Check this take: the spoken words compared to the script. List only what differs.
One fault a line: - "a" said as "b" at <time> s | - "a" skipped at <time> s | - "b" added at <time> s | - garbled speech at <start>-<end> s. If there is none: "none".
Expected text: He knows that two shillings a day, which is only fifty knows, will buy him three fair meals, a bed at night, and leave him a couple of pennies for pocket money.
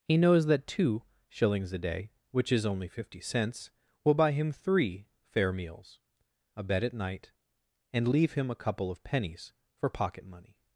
- "knows" said as "cents" at 3.2 s